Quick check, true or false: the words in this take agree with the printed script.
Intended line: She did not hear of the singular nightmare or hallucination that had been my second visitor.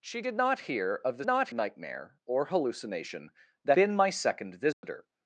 false